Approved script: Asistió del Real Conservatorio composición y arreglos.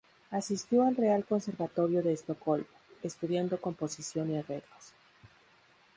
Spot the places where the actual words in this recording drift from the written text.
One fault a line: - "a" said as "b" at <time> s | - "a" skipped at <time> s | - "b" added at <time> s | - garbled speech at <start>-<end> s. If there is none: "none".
- "del" said as "al" at 0.8 s
- "de Estocolmo estudiando" added at 2.0 s